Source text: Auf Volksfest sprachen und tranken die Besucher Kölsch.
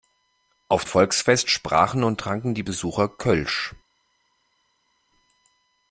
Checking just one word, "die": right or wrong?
right